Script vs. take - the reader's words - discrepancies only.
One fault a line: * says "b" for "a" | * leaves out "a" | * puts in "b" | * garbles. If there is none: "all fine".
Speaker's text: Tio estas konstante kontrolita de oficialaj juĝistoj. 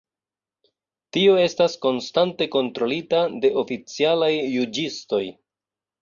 all fine